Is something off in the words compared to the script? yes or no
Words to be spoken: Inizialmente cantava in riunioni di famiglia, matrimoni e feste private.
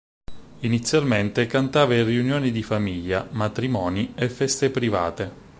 no